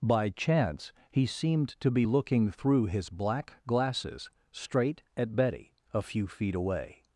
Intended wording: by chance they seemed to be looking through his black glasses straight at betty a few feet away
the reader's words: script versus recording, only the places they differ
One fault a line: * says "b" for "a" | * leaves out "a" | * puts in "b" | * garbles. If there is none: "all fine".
* says "he" for "they"